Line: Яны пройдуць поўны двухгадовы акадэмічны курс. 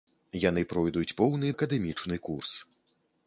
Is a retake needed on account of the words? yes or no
yes